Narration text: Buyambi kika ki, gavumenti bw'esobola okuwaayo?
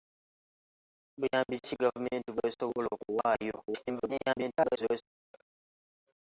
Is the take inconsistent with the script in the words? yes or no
yes